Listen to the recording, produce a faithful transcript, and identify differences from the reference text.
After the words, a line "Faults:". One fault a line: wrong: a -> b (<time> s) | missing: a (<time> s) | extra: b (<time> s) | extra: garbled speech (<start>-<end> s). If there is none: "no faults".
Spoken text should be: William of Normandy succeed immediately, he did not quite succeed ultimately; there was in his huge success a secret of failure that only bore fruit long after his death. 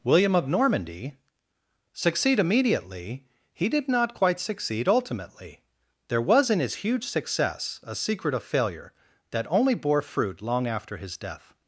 William of Normandy succeed immediately, he did not quite succeed ultimately; there was in his huge success a secret of failure that only bore fruit long after his death.
Faults:
no faults